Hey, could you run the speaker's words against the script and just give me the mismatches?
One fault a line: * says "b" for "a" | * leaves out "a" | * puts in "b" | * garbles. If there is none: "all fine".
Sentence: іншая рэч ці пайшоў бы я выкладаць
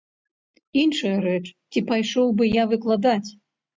all fine